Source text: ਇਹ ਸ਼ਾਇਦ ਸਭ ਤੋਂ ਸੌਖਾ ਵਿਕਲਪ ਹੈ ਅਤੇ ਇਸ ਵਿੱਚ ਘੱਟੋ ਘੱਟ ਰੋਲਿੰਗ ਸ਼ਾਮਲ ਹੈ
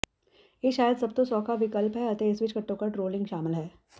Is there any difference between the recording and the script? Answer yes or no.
no